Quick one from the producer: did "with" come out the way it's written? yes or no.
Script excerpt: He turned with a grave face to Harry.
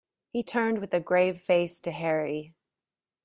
yes